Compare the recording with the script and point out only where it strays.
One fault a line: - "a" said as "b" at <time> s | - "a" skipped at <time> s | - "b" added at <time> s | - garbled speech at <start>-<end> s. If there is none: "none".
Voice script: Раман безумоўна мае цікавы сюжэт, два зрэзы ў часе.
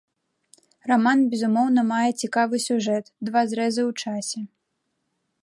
none